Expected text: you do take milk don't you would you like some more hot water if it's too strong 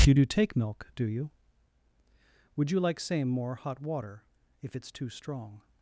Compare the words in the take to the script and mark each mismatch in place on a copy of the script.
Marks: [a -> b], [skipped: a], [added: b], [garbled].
you do take milk [don't -> do] you would you like [some -> same] more hot water if it's too strong